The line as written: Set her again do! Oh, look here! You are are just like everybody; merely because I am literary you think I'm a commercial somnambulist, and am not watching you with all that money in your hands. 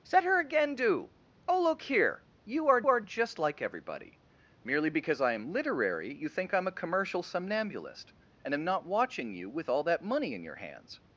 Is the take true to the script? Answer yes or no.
yes